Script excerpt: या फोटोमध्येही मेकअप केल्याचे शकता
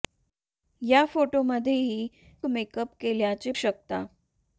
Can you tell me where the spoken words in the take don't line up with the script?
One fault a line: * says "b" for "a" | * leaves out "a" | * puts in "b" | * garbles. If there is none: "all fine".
all fine